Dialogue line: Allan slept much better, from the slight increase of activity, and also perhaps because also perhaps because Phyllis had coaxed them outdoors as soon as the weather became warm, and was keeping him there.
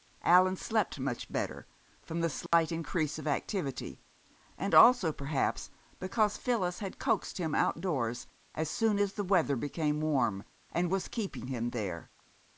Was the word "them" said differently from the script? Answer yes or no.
yes